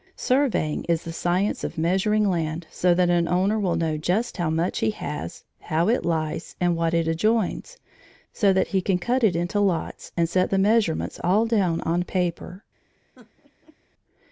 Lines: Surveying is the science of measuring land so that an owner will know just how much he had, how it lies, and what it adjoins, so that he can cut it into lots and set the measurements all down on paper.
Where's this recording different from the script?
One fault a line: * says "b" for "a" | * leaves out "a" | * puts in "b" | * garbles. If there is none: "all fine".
* says "has" for "had"